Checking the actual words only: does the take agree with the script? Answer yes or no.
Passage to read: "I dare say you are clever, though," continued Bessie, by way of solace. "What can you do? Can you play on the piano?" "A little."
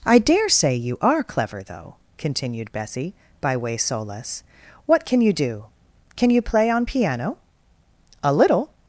no